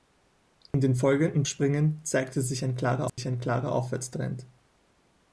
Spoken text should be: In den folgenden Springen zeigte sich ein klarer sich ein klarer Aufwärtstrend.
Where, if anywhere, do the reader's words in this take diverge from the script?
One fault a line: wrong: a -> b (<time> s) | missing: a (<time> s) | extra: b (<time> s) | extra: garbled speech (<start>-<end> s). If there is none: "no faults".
no faults